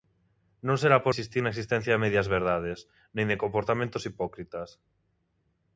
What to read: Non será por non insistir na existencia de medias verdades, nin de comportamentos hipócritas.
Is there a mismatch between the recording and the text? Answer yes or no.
yes